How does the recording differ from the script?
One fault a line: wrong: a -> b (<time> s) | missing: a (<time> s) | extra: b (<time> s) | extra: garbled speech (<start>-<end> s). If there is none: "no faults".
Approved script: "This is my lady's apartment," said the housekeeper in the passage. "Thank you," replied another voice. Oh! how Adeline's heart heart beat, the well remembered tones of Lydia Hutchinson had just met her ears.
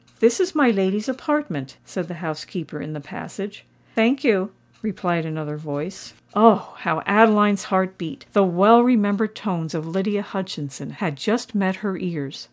missing: heart (8.0 s)